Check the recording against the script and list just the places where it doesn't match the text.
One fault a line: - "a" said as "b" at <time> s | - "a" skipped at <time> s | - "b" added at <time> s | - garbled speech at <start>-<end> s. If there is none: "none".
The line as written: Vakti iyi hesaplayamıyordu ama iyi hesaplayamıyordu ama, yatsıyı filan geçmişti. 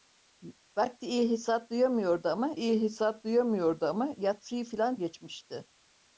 none